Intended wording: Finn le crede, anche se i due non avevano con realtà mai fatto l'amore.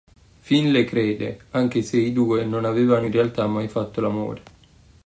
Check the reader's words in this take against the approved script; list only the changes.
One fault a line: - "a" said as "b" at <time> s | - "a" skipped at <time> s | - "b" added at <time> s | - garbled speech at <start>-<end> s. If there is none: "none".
- "con" said as "in" at 3.0 s